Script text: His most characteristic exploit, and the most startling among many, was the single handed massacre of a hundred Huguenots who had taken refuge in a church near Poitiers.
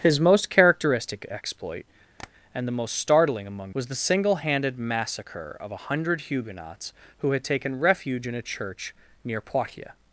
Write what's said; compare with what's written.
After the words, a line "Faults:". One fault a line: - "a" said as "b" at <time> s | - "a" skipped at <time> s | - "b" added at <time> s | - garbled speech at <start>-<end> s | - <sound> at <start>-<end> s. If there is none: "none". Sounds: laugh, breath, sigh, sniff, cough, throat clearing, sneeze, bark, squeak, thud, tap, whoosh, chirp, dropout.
His most characteristic exploit, and the most startling among was the single handed massacre of a hundred Huguenots who had taken refuge in a church near Poitiers.
Faults:
- tap at 2.2-2.3 s
- "many" skipped at 3.8 s